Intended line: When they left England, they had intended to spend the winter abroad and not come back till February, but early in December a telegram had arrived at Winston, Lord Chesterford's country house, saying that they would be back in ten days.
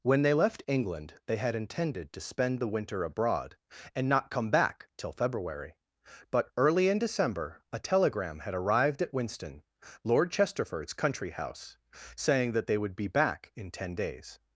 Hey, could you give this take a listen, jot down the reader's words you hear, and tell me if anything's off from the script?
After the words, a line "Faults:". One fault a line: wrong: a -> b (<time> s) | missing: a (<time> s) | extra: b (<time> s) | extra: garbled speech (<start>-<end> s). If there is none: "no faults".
When they left England, they had intended to spend the winter abroad and not come back till February, but early in December a telegram had arrived at Winston, Lord Chesterford's country house, saying that they would be back in ten days.
Faults:
no faults